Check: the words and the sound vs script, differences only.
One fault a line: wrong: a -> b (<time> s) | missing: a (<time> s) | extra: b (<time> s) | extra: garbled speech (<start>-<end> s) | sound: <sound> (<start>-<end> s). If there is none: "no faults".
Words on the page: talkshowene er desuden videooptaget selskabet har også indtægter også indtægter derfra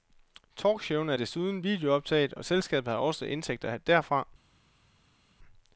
extra: og (2.3 s)
missing: også indtægter (3.8 s)